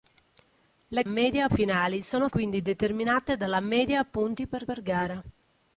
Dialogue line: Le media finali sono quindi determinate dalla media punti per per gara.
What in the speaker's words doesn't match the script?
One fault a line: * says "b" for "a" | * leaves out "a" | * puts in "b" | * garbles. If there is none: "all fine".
all fine